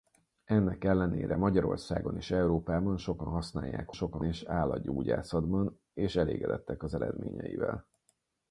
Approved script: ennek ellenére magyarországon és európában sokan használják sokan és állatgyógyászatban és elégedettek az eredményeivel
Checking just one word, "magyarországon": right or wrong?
right